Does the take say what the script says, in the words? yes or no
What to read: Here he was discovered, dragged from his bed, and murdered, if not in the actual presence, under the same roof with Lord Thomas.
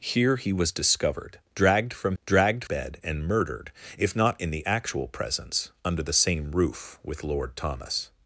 no